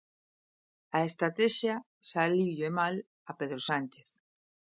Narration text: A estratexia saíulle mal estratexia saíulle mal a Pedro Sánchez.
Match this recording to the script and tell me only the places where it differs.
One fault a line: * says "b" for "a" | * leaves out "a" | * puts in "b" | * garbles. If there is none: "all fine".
* leaves out "estratexia saíulle mal"